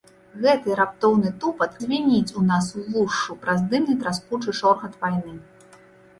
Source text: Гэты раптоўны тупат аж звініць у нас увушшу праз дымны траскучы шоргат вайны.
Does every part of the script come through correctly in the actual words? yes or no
no